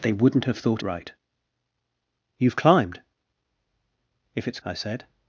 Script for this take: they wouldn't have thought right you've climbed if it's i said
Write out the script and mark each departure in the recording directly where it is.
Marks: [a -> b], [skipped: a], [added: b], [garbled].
they wouldn't have thought right you've climbed if it's i said